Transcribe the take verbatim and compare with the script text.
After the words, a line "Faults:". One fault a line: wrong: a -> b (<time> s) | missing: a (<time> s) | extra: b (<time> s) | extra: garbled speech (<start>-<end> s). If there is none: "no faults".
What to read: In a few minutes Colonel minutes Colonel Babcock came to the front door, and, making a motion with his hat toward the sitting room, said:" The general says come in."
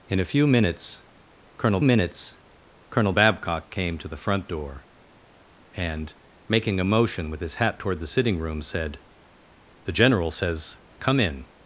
In a few minutes Colonel minutes Colonel Babcock came to the front door, and, making a motion with his hat toward the sitting room, said:" The general says come in."
Faults:
no faults